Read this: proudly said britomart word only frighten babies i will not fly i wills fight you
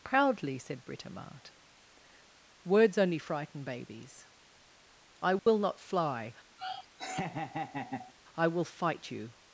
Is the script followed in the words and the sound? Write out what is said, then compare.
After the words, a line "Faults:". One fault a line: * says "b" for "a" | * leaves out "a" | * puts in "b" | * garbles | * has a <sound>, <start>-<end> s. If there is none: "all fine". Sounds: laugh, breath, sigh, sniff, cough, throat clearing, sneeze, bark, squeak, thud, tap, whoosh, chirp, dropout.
proudly said britomart words only frighten babies i will not fly i will fight you
Faults:
* says "words" for "word"
* has a dropout, 5.4-5.5 s
* has a laugh, 6.6-8.1 s
* says "will" for "wills"